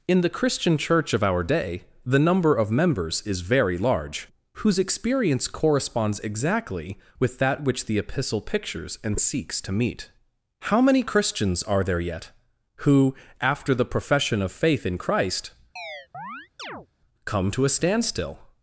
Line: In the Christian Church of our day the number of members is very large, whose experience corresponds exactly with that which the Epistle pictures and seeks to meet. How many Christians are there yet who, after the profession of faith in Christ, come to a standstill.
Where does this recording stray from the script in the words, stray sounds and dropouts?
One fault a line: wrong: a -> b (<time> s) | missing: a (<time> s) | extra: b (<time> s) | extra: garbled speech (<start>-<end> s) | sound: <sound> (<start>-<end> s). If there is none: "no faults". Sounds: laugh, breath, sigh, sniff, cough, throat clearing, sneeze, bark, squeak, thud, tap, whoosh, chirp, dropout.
sound: chirp (15.8-16.9 s)